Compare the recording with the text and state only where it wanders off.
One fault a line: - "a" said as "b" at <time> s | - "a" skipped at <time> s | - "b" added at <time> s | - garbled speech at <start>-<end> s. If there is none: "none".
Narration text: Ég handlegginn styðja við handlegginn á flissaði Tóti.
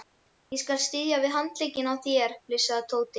- "handlegginn" said as "skal" at 0.6 s
- "þér" added at 2.1 s